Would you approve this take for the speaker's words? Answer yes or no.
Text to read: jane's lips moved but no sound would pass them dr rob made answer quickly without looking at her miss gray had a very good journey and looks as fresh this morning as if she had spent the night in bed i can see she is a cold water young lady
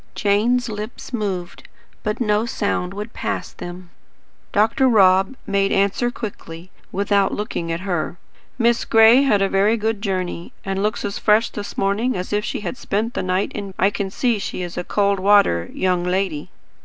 no